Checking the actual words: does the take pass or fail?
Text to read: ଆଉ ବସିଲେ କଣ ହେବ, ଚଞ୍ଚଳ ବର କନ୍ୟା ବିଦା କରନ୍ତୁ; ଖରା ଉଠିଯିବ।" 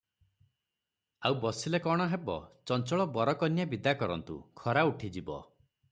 pass